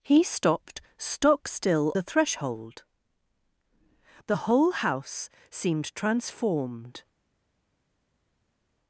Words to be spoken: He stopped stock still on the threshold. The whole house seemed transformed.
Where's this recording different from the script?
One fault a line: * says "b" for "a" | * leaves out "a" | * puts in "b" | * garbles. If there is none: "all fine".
* leaves out "on"